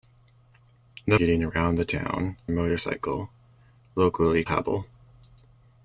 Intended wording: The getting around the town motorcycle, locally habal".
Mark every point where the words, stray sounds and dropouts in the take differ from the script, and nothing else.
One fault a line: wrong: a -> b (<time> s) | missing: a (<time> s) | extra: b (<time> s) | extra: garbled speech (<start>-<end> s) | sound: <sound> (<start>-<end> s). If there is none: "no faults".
no faults